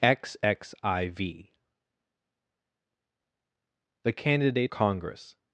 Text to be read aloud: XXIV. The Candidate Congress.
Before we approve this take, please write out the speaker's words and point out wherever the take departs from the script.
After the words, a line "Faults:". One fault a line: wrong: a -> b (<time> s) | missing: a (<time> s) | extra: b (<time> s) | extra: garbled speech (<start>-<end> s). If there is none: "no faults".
XXIV. The Candidate Congress.
Faults:
no faults